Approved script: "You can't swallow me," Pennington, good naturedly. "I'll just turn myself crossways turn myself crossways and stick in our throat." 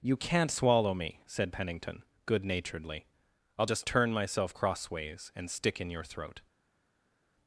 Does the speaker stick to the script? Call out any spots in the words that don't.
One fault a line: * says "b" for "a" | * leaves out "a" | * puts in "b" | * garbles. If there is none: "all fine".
* puts in "said"
* leaves out "turn myself crossways"
* says "your" for "our"